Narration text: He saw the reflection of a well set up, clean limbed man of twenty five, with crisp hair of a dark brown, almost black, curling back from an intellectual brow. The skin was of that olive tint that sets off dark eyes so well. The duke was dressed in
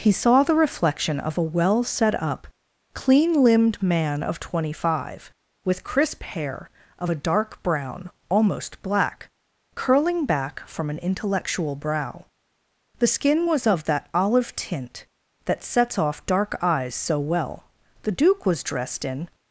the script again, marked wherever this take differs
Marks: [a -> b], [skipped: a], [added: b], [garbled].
He saw the reflection of a well set up, clean limbed man of twenty five, with crisp hair of a dark brown, almost black, curling back from an intellectual brow. The skin was of that olive tint that sets off dark eyes so well. The duke was dressed in